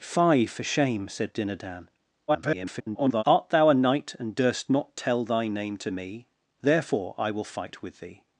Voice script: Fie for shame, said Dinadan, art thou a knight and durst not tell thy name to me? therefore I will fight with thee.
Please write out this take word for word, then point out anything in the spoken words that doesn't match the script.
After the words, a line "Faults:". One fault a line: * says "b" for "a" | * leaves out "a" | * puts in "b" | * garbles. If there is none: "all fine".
Fie for shame, said Dinadan, [garbled] art thou a knight and durst not tell thy name to me? therefore I will fight with thee.
Faults:
* garbles